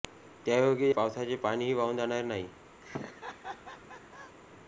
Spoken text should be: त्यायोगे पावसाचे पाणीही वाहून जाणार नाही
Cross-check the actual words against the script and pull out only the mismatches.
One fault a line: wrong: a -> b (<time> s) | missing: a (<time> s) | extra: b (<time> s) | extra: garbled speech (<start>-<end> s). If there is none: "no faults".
no faults